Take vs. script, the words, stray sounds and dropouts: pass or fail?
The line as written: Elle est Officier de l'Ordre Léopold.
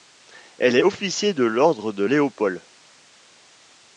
fail